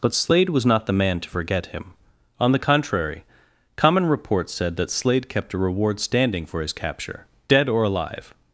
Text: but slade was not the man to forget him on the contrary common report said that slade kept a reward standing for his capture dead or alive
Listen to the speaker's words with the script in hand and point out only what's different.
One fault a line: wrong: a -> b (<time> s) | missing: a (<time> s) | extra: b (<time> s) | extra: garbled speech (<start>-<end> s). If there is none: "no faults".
no faults